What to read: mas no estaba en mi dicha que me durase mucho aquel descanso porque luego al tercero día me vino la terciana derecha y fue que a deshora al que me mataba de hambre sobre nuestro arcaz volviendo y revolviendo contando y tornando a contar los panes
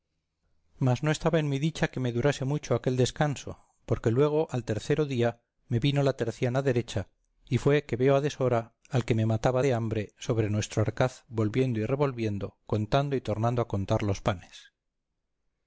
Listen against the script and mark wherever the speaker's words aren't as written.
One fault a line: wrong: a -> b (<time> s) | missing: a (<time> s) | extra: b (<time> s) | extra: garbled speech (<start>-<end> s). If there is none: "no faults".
extra: veo (8.0 s)